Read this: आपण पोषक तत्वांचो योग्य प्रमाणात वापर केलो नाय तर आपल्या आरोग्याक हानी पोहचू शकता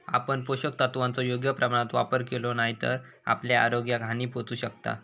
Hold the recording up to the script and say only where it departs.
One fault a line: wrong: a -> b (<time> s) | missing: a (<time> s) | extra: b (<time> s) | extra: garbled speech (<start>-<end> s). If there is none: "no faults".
no faults